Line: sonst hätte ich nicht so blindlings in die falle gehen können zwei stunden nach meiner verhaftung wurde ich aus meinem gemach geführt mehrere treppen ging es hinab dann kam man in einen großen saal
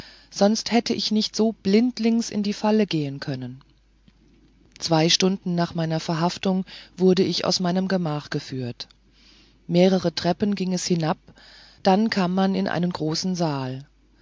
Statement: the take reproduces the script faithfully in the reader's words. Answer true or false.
true